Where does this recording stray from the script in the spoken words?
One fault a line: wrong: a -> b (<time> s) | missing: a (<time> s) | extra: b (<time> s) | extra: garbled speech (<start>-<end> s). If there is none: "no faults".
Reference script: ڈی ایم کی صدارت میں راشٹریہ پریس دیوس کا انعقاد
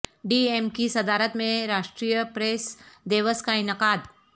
no faults